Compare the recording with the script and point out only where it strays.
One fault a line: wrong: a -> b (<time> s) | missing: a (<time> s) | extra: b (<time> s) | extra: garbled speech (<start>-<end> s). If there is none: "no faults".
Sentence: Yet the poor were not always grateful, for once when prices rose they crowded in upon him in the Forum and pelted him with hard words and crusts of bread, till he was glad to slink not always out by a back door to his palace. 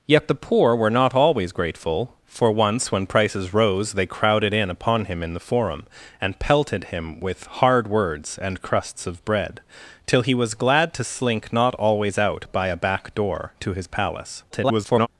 extra: garbled speech (14.5-15.1 s)